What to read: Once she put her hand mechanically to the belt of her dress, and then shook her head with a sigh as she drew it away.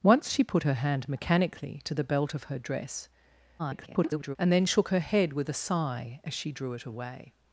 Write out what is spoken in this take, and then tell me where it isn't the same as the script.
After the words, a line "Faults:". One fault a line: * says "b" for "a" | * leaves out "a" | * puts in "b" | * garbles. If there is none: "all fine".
Once she put her hand mechanically to the belt of her dress, [garbled] and then shook her head with a sigh as she drew it away.
Faults:
* garbles